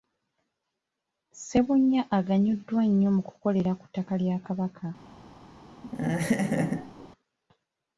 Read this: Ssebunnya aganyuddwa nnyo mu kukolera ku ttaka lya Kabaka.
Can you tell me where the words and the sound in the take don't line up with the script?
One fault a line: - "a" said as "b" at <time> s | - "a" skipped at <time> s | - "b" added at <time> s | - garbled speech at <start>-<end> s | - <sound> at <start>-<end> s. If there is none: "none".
- laugh at 5.8-7.1 s